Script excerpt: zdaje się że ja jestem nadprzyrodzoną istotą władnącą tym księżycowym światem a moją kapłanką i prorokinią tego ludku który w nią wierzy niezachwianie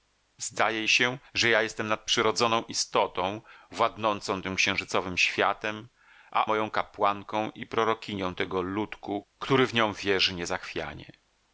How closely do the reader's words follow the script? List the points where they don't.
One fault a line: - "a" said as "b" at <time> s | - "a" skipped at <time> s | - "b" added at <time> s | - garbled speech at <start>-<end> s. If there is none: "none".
none